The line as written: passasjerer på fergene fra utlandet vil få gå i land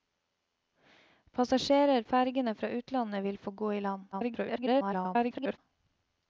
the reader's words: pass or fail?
fail